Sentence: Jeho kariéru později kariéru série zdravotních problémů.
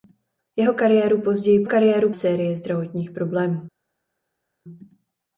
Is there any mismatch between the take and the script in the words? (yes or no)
no